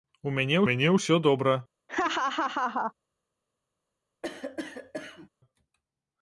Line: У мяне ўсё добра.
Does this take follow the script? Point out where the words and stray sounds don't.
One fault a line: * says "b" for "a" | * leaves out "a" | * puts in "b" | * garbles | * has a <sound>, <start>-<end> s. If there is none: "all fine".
* puts in "мяне"
* has a laugh, 1.9-2.9 s
* has a cough, 4.2-5.3 s